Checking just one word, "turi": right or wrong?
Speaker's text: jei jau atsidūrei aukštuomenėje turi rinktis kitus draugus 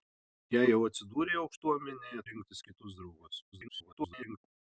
wrong